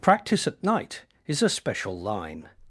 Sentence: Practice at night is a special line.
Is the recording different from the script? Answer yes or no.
no